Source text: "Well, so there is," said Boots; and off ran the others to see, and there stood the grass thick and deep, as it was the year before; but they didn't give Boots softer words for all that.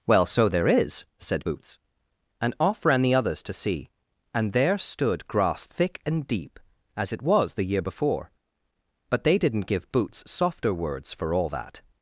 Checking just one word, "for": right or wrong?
right